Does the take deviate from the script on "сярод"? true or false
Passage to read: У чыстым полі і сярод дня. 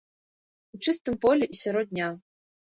false